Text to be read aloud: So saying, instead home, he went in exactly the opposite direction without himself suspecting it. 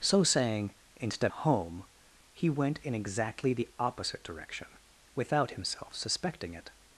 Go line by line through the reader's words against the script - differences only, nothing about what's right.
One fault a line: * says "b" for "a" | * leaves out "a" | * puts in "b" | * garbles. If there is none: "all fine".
all fine